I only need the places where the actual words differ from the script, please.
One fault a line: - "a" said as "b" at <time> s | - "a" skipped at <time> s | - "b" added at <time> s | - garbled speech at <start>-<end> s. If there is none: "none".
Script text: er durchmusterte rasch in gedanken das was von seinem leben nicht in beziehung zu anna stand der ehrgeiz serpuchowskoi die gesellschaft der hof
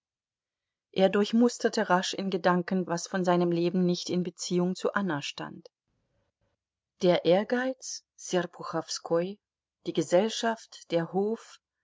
- "das" skipped at 2.9 s